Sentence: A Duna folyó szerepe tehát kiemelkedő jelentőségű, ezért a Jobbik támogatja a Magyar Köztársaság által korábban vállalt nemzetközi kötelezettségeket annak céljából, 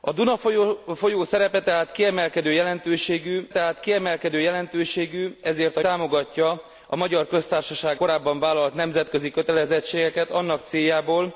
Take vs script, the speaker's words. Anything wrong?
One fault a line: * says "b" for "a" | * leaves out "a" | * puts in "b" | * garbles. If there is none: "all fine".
* puts in "tehát kiemelkedő jelentőségű"
* leaves out "Jobbik"
* leaves out "által"